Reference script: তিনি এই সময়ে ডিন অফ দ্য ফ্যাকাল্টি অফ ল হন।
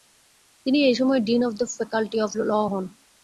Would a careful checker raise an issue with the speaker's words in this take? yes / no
no